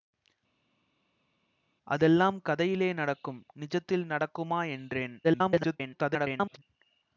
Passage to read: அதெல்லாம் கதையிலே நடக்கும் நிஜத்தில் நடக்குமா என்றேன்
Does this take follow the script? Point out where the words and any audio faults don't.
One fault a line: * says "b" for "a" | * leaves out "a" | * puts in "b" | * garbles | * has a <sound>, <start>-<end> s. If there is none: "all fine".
* garbles